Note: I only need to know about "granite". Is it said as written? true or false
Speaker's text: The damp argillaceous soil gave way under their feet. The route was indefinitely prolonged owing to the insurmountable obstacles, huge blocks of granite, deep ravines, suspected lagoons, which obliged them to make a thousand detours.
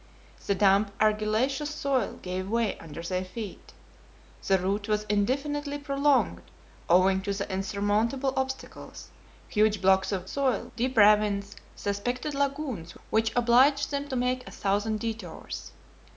false